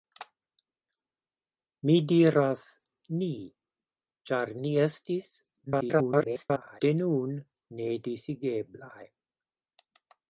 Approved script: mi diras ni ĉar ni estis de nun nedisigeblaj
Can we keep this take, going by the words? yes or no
no